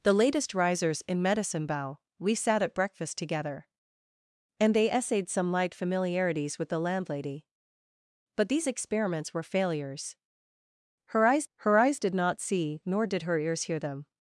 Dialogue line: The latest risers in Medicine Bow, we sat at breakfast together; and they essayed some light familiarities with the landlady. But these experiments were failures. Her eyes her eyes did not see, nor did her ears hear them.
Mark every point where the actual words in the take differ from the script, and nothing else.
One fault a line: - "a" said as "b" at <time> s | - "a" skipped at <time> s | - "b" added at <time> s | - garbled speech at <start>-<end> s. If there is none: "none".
none